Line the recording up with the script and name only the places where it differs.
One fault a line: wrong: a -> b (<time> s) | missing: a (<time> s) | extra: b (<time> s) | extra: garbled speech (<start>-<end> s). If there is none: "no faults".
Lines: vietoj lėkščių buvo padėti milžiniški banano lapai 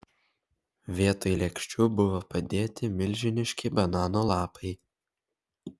no faults